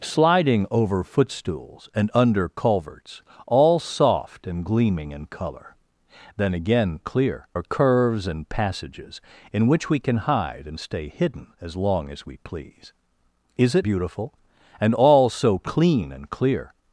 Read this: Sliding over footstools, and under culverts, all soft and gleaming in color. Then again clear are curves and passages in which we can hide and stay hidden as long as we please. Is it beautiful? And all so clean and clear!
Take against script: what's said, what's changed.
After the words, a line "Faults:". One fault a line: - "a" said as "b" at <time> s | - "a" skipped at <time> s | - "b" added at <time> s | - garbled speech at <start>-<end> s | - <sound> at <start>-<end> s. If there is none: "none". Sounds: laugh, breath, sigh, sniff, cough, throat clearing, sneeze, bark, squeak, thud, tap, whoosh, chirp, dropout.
Sliding over footstools, and under culverts, all soft and gleaming in color. Then again clear are curves and passages in which we can hide and stay hidden as long as we please. Is it beautiful? And all so clean and clear!
Faults:
none